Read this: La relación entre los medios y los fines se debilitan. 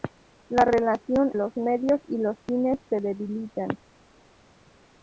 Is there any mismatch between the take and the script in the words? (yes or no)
yes